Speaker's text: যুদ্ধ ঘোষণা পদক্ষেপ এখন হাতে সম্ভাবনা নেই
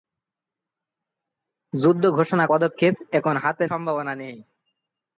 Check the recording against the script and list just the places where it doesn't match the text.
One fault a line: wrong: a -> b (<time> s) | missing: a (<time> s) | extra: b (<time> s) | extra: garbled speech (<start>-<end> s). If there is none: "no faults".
no faults